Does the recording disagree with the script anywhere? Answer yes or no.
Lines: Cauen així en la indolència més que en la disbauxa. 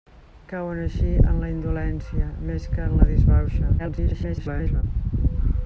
yes